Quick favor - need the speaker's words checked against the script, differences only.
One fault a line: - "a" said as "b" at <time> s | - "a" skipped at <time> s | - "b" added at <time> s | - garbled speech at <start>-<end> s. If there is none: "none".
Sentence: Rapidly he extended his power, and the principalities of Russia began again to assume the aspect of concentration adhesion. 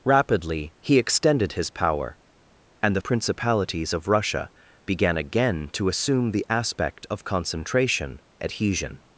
none